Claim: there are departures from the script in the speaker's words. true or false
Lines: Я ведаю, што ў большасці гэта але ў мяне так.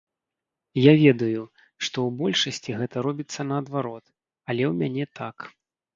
true